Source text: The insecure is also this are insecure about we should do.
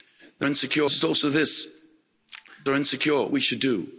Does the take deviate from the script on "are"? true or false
false